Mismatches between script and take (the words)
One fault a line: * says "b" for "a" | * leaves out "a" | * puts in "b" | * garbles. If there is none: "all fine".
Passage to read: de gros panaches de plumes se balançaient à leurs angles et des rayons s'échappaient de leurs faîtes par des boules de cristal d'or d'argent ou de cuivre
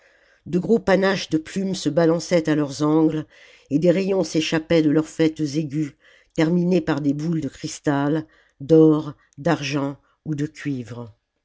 * puts in "aigus terminés"